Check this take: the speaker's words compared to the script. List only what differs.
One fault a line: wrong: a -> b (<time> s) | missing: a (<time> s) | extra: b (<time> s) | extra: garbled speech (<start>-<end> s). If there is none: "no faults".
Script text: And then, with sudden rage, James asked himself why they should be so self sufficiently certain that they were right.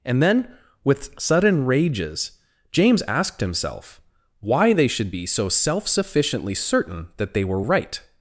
wrong: rage -> rages (1.6 s)